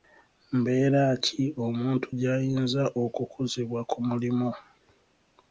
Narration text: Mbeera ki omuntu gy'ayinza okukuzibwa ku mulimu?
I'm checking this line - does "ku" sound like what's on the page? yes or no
yes